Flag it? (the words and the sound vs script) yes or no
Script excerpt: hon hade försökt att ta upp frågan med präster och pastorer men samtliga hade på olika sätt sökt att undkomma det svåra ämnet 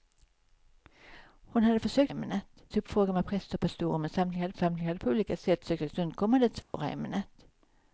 yes